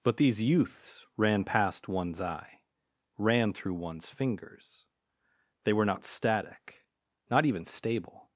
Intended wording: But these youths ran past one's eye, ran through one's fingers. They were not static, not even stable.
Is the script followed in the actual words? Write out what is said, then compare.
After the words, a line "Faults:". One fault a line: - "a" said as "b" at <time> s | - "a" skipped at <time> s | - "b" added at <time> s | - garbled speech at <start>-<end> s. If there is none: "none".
But these youths ran past one's eye, ran through one's fingers. They were not static, not even stable.
Faults:
none